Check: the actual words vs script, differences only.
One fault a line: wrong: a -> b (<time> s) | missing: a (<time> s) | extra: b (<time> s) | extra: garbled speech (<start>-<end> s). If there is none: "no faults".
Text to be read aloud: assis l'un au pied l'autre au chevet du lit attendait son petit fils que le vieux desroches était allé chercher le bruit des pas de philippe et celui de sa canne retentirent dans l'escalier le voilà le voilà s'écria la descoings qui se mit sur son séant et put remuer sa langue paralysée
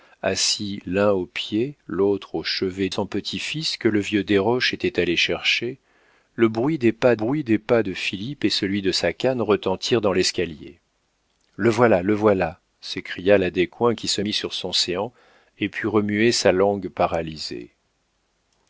missing: du lit attendait (2.9 s)
extra: bruit des pas (7.1 s)